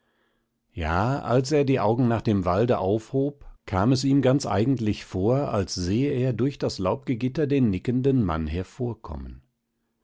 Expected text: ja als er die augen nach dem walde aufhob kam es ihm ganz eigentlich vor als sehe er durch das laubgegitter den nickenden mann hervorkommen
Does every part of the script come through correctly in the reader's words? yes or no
yes